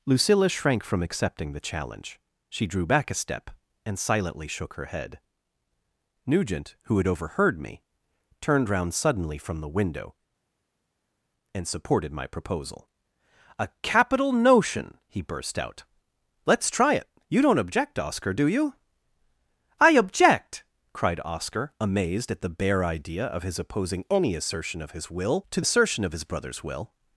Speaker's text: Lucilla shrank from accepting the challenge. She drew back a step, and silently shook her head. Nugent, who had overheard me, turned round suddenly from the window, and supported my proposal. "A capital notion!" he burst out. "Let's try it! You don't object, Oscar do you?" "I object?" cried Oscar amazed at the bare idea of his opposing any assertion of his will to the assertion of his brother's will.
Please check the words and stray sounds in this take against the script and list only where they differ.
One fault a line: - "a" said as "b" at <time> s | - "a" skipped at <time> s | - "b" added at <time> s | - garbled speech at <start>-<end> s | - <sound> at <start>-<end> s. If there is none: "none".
- "the" skipped at 25.6 s